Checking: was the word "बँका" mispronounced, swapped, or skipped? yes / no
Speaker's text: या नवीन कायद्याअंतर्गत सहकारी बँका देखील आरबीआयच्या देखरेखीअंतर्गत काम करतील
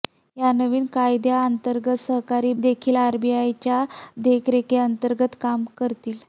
yes